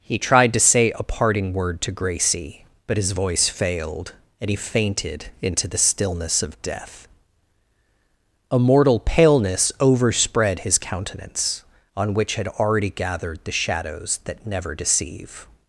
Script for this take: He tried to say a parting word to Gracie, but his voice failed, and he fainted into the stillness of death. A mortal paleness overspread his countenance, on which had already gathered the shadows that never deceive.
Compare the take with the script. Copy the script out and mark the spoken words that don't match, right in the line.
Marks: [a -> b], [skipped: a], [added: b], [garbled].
He tried to say a parting word to Gracie, but his voice failed, and he fainted into the stillness of death. A mortal paleness overspread his countenance, on which had already gathered the shadows that never deceive.